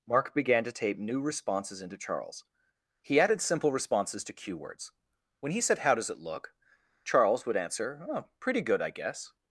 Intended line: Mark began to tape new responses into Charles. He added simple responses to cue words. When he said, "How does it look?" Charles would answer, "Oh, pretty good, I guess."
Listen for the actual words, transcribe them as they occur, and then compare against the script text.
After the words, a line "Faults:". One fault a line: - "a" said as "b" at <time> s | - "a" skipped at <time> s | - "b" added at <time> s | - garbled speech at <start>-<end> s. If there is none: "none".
Mark began to tape new responses into Charles. He added simple responses to cue words. When he said, "How does it look?" Charles would answer, "Oh, pretty good, I guess."
Faults:
none